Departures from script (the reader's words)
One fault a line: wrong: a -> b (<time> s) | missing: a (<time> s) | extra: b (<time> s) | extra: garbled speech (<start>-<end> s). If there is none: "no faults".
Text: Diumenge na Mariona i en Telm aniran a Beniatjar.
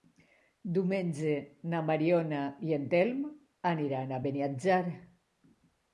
no faults